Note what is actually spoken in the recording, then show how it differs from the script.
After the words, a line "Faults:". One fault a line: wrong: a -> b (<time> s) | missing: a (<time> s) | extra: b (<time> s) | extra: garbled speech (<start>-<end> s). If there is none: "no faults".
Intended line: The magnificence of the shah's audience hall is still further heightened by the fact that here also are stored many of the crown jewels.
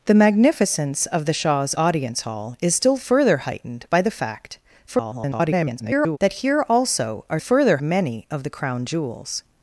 The magnificence of the shah's audience hall is still further heightened by the fact [garbled] that here also are further many of the crown jewels.
Faults:
extra: garbled speech (4.9-6.2 s)
wrong: stored -> further (7.4 s)